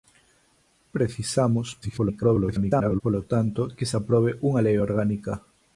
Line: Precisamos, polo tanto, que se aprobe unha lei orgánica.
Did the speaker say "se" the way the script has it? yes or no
yes